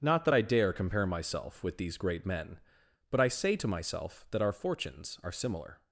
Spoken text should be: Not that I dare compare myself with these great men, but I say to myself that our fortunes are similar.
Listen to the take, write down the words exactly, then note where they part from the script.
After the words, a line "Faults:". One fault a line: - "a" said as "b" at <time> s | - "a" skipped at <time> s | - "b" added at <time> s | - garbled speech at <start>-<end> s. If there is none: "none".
Not that I dare compare myself with these great men, but I say to myself that our fortunes are similar.
Faults:
none